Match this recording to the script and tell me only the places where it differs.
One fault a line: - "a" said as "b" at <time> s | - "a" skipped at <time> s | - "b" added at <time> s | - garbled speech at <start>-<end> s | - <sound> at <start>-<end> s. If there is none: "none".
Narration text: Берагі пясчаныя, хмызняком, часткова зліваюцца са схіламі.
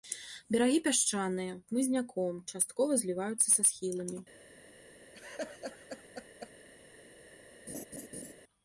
- laugh at 5.1-6.5 s
- laugh at 7.7-8.3 s